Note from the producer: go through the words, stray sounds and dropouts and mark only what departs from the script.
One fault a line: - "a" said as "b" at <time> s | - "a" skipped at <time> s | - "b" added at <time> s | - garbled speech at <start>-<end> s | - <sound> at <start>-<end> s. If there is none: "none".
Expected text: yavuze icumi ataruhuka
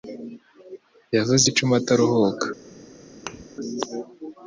- thud at 3.3-3.4 s